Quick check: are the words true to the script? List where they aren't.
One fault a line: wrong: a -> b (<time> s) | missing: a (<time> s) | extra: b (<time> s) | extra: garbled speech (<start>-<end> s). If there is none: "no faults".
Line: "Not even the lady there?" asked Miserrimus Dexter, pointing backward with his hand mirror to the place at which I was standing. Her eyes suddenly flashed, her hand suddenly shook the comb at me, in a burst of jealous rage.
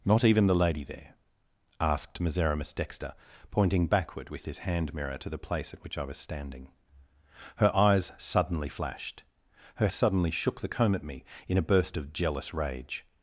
missing: hand (9.9 s)